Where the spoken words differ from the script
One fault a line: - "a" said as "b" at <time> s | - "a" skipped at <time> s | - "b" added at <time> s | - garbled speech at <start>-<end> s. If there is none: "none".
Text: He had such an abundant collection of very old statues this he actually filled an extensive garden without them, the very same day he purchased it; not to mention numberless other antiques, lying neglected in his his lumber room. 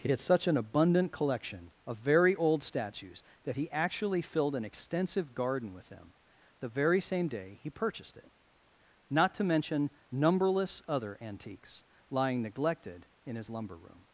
- "this" said as "that" at 3.4 s
- "without" said as "with" at 5.7 s
- "his" skipped at 13.5 s